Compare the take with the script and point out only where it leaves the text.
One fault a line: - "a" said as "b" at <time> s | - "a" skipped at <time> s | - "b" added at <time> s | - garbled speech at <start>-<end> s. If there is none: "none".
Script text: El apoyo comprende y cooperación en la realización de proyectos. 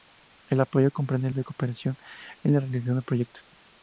none